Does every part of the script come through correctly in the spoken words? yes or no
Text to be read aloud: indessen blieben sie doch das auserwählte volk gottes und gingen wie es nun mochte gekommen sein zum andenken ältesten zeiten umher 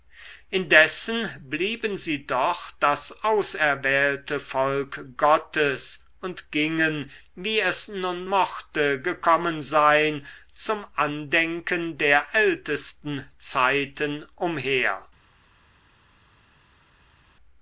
no